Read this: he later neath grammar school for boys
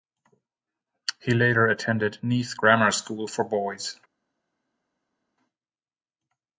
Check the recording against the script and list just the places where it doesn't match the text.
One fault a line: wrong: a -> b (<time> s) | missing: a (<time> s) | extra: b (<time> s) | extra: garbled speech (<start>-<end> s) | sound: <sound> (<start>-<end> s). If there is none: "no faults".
extra: attended (1.7 s)